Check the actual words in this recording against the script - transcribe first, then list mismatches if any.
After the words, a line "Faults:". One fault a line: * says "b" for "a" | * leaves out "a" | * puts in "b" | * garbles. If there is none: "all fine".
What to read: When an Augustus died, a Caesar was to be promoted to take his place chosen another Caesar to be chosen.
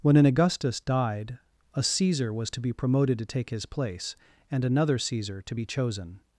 When an Augustus died, a Caesar was to be promoted to take his place and another Caesar to be chosen.
Faults:
* says "and" for "chosen"